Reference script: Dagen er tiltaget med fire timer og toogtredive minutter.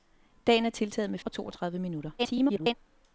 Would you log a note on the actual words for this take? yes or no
yes